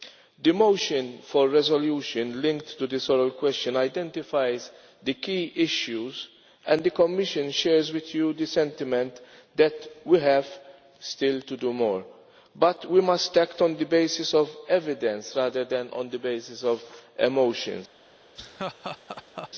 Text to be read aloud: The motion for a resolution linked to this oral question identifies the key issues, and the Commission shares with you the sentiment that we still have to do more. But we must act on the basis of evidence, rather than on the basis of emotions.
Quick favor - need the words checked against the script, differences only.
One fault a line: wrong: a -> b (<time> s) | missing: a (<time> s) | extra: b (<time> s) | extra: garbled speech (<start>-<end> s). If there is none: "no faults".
no faults